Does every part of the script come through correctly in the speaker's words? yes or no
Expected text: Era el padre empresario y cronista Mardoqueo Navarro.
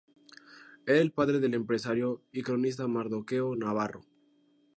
no